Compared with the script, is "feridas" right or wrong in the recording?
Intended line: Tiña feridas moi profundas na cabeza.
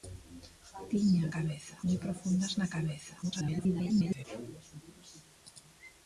wrong